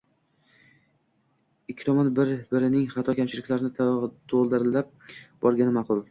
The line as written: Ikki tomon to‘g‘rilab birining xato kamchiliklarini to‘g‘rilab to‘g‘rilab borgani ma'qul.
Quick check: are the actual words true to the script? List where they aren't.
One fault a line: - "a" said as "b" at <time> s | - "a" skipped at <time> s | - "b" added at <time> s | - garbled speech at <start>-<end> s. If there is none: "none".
- "to‘g‘rilab" said as "bir" at 2.2 s
- "to‘g‘rilab" skipped at 5.0 s